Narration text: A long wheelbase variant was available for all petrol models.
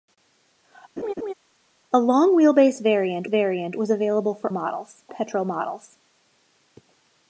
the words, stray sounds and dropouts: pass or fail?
fail